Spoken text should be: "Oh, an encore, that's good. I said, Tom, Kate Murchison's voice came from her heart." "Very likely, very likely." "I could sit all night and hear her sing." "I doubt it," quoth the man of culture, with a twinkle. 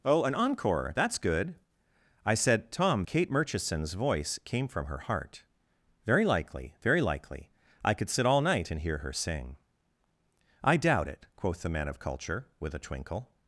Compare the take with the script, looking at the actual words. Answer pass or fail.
pass